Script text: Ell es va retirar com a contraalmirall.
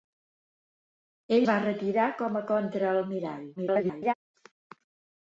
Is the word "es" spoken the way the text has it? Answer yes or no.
no